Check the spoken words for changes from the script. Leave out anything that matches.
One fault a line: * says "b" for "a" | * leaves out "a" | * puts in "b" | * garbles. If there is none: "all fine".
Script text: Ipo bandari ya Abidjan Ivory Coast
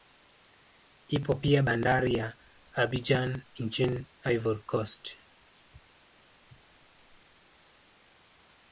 * puts in "pia"
* puts in "nchini"